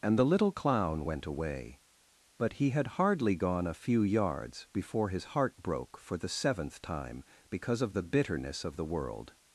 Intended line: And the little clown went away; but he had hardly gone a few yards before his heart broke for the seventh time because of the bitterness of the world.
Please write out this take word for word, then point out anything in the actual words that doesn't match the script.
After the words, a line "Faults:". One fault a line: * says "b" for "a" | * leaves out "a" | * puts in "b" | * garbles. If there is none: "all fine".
And the little clown went away; but he had hardly gone a few yards before his heart broke for the seventh time because of the bitterness of the world.
Faults:
all fine